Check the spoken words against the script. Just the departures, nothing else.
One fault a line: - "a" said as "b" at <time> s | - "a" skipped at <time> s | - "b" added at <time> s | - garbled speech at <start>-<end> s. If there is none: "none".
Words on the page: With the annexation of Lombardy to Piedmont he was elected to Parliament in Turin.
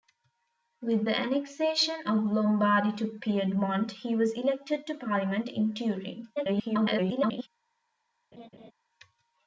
- garbled speech at 6.4-7.5 s